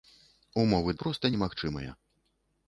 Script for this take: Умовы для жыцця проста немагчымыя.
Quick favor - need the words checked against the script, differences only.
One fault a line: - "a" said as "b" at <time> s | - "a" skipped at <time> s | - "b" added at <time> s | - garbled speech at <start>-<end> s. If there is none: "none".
- "для жыцця" skipped at 0.9 s